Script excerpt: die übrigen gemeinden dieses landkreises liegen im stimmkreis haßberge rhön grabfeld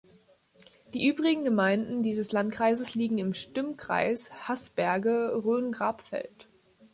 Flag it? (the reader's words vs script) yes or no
no